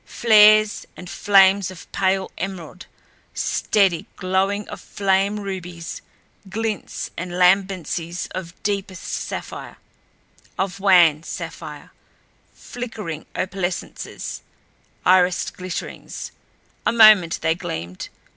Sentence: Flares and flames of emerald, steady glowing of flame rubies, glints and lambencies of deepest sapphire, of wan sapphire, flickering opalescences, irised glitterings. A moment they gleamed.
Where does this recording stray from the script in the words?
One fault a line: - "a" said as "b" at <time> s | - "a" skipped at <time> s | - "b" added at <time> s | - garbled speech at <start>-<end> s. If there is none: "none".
- "pale" added at 1.9 s